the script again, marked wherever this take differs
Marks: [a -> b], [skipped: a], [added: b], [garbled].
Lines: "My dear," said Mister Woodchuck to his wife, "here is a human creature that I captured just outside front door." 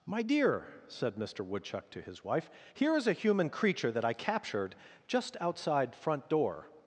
"My dear," said Mister Woodchuck to his wife, "here is a human creature that I captured just outside front door."